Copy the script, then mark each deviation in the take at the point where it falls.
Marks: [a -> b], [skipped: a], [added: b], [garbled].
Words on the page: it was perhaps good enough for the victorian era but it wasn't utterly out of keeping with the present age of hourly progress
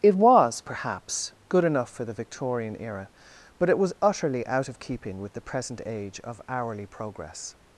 it was perhaps good enough for the victorian era but it [wasn't -> was] utterly out of keeping with the present age of hourly progress